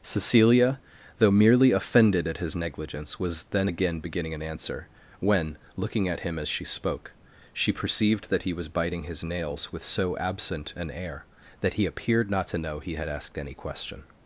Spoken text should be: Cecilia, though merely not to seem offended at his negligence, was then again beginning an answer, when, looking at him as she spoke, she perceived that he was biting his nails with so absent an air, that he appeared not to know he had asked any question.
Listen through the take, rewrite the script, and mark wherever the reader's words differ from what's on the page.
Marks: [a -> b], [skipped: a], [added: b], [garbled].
Cecilia, though merely [skipped: not to seem] offended at his negligence, was then again beginning an answer, when, looking at him as she spoke, she perceived that he was biting his nails with so absent an air, that he appeared not to know he had asked any question.